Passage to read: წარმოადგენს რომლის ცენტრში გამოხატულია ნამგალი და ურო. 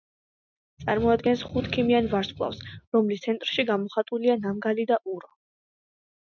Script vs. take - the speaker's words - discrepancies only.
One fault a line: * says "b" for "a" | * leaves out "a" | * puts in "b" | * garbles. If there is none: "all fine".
* puts in "ხუთქიმიან ვარსკვლავს"